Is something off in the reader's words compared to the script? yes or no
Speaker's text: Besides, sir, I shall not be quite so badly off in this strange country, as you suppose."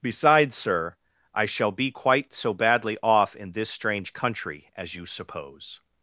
yes